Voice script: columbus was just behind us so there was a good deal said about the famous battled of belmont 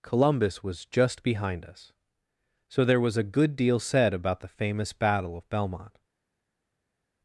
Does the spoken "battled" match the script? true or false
false